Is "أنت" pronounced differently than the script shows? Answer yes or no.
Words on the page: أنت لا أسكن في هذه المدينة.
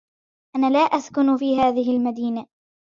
yes